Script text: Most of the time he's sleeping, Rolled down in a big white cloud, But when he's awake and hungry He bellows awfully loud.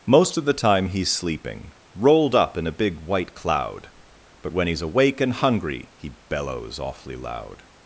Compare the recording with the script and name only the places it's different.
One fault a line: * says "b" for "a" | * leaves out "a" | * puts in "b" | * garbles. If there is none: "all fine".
* says "up" for "down"